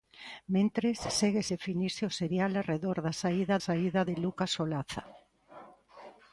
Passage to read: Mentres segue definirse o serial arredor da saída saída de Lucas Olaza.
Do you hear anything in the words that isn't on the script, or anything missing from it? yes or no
no